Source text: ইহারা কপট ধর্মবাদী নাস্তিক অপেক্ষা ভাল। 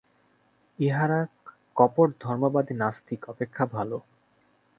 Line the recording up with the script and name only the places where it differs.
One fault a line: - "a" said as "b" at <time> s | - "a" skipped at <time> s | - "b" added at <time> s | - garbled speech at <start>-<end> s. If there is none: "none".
none